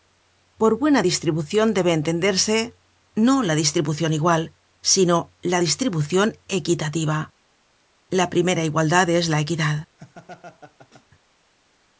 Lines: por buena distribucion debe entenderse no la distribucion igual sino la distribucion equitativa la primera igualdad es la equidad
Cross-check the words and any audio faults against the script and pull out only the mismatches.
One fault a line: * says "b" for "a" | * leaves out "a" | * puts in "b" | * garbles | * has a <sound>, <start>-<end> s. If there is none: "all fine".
* has a laugh, 10.0-11.1 s